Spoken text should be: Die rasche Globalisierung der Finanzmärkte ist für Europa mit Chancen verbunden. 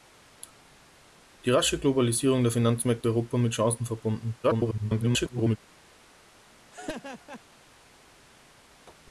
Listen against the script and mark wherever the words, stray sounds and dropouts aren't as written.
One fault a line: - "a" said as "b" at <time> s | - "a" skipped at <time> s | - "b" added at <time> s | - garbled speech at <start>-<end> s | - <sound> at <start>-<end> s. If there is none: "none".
- "ist" skipped at 3.1 s
- garbled speech at 4.4-5.6 s
- laugh at 6.7-7.4 s